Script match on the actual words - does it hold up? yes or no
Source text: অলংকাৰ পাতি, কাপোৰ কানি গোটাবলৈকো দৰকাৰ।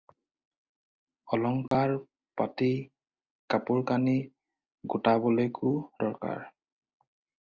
yes